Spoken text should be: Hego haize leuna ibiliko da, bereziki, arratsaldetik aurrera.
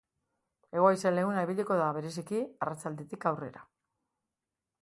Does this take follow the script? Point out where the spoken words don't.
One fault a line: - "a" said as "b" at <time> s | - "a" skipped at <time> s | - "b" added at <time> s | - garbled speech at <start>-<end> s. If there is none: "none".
none